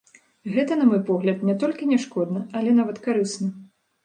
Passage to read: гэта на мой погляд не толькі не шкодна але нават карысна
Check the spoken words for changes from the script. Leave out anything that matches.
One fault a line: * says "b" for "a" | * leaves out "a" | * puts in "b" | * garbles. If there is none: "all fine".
all fine